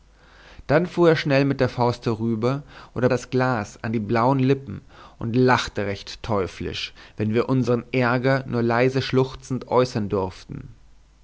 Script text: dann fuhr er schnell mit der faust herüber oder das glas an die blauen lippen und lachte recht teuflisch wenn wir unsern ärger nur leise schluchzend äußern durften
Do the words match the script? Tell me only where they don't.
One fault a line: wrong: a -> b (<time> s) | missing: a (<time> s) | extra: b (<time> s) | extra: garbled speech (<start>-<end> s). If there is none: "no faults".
no faults